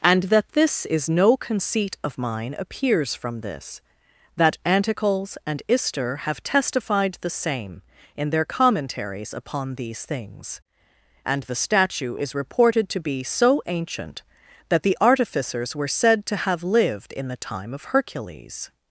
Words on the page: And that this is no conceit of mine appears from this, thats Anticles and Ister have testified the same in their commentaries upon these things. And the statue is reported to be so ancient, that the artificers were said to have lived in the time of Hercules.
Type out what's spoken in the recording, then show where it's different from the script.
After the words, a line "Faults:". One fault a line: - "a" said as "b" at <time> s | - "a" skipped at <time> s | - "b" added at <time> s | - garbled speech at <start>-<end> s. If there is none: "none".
And that this is no conceit of mine appears from this, that Anticles and Ister have testified the same in their commentaries upon these things. And the statue is reported to be so ancient, that the artificers were said to have lived in the time of Hercules.
Faults:
- "thats" said as "that" at 4.3 s